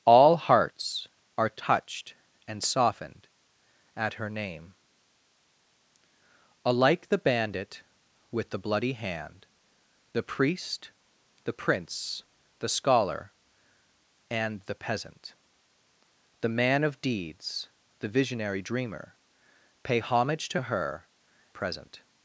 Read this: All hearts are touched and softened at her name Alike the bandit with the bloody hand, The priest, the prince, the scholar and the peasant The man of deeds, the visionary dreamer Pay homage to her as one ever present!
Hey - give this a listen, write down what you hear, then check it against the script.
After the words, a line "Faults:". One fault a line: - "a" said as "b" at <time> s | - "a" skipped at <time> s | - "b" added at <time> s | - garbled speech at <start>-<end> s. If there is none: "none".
All hearts are touched and softened at her name Alike the bandit with the bloody hand, The priest, the prince, the scholar and the peasant The man of deeds, the visionary dreamer Pay homage to her present!
Faults:
- "as one ever" skipped at 21.1 s